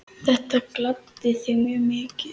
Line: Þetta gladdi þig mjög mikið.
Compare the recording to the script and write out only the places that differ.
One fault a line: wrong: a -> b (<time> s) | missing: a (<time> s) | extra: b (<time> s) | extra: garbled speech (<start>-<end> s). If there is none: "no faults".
no faults